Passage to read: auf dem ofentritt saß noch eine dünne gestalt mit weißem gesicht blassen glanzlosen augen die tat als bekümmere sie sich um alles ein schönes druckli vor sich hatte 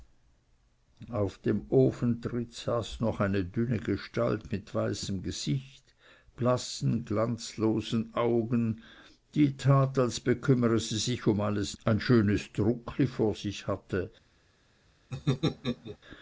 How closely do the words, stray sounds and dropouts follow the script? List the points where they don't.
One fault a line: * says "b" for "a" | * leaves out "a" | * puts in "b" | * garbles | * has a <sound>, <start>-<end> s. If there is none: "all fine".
* has a laugh, 15.1-16.0 s